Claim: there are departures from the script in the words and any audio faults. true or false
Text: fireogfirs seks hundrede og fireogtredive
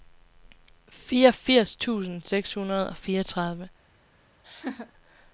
true